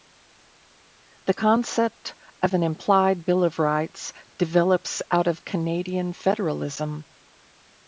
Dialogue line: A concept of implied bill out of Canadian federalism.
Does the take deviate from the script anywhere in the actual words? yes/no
yes